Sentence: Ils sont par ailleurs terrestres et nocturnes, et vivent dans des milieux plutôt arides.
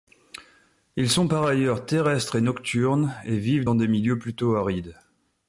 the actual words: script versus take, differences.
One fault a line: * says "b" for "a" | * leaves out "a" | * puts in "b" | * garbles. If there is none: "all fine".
all fine